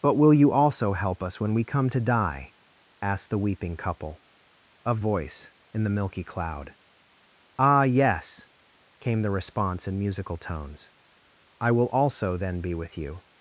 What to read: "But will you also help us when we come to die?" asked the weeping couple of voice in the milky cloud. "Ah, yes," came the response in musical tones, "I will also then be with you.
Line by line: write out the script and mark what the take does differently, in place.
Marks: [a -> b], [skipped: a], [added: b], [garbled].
"But will you also help us when we come to die?" asked the weeping couple of voice in the milky cloud. "Ah, yes," came the response in musical tones, "I will also then be with you.